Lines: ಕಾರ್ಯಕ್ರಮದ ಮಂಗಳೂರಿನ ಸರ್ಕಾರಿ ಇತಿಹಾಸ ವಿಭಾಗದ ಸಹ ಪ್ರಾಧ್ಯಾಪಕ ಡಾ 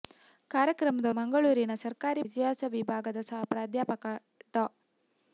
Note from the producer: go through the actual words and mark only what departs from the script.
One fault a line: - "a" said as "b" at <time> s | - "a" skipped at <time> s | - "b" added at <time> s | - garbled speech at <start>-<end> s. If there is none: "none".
none